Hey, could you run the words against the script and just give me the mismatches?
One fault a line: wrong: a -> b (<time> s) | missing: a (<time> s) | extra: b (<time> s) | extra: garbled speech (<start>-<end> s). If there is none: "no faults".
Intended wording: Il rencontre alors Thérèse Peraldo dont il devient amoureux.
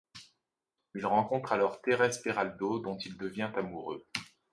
no faults